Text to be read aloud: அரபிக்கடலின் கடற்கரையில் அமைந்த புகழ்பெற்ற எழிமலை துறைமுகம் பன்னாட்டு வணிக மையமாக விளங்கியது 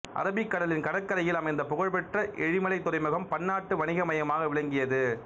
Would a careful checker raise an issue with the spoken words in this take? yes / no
no